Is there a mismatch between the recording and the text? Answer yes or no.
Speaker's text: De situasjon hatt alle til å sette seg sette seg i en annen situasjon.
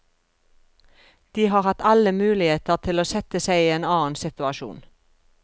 yes